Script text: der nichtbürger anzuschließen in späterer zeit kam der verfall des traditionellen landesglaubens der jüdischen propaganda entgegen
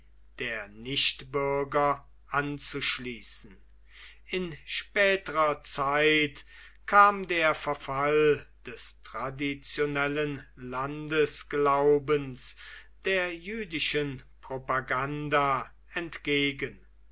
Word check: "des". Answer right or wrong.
right